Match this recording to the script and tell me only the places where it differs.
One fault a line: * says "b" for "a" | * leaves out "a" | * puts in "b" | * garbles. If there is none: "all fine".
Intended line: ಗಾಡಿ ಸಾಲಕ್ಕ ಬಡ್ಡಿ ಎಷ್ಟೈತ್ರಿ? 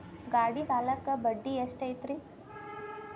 all fine